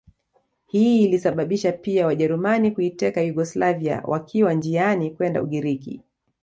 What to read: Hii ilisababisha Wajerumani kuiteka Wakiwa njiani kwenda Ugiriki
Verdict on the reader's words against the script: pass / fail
fail